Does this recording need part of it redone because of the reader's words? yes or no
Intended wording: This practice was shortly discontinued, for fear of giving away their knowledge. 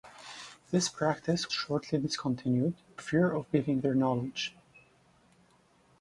yes